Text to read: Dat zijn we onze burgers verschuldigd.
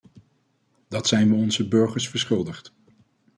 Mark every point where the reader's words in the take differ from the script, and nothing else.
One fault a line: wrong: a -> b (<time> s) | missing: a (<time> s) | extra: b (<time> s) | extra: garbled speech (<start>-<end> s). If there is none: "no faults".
no faults